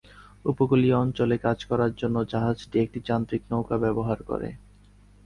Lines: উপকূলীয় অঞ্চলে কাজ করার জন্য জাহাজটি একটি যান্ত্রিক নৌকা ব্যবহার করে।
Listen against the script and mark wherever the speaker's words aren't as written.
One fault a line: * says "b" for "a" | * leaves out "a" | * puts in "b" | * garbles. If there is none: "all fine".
all fine